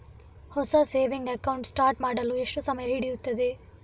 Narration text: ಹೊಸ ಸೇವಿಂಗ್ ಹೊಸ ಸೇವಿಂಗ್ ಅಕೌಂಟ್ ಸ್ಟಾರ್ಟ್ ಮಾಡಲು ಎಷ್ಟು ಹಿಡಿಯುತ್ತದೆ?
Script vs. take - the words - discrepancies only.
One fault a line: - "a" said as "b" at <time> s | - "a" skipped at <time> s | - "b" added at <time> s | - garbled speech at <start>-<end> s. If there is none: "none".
- "ಹೊಸ ಸೇವಿಂಗ್" skipped at 1.3 s
- "ಸಮಯ" added at 2.6 s